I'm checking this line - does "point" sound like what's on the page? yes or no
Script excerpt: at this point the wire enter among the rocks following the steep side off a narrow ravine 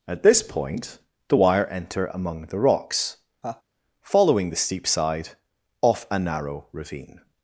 yes